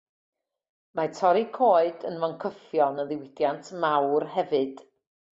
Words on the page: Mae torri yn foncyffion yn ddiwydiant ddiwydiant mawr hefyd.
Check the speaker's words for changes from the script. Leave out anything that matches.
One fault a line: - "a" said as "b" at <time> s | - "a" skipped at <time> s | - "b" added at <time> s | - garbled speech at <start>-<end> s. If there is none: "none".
- "coed" added at 1.6 s
- "ddiwydiant" skipped at 3.7 s